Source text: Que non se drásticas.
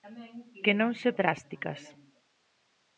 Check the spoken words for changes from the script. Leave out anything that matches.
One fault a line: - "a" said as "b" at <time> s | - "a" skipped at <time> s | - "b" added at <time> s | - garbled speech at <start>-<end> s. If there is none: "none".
none